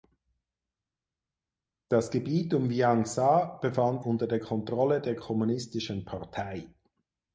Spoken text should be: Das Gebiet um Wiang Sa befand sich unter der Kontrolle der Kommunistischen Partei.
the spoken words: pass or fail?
fail